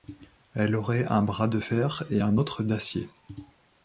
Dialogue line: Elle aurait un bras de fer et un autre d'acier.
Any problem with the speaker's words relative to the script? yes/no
no